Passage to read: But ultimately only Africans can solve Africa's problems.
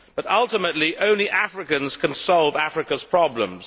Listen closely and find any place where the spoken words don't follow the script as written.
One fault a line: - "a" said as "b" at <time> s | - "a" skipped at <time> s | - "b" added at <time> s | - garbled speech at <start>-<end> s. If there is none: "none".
none